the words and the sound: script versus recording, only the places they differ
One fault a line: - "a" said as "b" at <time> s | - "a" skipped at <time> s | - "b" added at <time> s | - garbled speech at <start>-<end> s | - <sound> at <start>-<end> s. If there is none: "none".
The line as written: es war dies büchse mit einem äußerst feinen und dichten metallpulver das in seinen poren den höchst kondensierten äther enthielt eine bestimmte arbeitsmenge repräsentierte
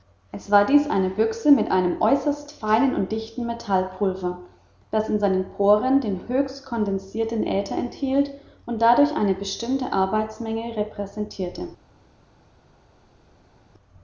- "eine" added at 0.9 s
- "und dadurch" added at 8.7 s